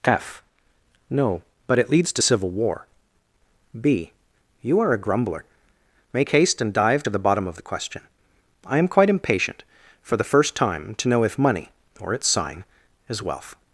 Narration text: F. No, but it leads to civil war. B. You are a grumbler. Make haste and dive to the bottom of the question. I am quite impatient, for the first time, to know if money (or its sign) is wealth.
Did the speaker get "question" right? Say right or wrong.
right